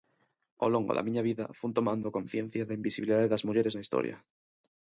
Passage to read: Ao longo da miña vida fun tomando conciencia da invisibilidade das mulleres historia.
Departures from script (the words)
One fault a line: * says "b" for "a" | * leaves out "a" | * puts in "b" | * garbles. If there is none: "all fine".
* puts in "na"